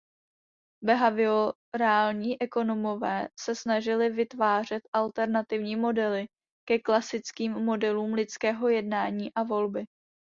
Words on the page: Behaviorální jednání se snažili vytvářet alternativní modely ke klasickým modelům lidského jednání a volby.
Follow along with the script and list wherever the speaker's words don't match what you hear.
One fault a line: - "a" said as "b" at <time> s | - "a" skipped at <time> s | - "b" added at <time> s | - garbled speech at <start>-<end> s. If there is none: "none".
- "jednání" said as "ekonomové" at 2.4 s